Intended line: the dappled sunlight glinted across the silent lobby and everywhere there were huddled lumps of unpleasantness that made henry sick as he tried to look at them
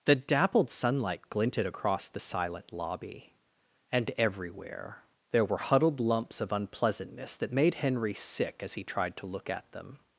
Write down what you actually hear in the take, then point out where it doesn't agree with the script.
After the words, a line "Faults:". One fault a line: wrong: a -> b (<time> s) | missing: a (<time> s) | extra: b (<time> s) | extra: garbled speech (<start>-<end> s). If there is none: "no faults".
the dappled sunlight glinted across the silent lobby and everywhere there were huddled lumps of unpleasantness that made henry sick as he tried to look at them
Faults:
no faults